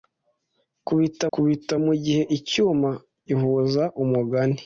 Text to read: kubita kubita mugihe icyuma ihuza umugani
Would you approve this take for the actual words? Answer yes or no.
yes